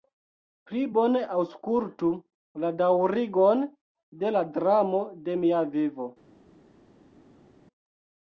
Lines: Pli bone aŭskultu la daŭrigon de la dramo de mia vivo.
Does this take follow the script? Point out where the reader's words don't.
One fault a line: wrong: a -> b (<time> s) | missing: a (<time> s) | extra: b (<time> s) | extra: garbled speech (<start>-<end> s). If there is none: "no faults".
no faults